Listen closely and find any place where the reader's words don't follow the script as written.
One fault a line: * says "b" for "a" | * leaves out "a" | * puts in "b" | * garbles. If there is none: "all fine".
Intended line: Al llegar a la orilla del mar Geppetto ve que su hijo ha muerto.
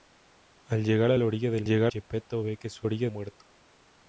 * says "llegar" for "mar"
* says "orilla" for "hijo"